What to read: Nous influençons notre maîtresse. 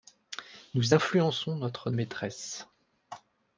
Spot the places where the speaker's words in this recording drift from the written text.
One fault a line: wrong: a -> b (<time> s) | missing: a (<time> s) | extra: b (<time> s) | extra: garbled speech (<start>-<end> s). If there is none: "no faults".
no faults